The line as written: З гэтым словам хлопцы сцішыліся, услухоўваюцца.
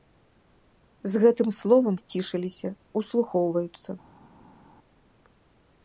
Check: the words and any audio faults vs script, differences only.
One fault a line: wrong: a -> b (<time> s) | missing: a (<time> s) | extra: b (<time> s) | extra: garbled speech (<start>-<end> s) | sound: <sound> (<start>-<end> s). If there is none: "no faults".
missing: хлопцы (1.9 s)